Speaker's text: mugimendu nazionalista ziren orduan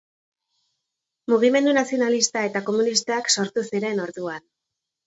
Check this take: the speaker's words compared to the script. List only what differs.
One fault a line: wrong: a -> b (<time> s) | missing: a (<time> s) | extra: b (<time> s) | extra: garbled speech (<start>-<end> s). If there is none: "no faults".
extra: eta komunistak sortu (2.5 s)